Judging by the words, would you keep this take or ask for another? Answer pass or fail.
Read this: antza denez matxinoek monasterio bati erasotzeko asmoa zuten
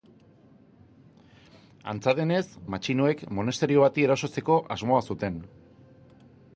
pass